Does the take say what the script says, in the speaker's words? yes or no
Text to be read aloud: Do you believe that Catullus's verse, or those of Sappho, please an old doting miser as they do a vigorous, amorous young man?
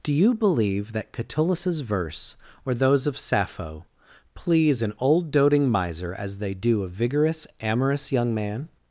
yes